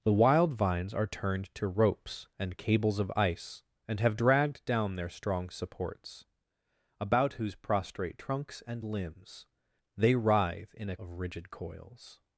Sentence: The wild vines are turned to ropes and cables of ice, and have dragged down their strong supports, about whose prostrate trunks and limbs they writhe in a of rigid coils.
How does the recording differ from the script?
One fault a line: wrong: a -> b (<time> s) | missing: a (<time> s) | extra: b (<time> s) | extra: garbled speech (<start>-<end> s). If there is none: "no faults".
no faults